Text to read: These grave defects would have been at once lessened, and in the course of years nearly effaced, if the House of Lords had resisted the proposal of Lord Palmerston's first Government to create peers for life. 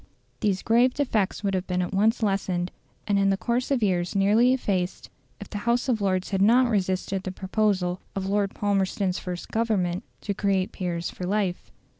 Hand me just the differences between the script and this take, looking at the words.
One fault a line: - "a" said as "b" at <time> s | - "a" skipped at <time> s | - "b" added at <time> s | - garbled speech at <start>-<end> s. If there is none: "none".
- "not" added at 6.4 s